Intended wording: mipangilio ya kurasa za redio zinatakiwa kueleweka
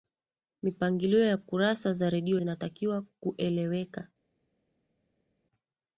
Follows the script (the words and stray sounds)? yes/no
yes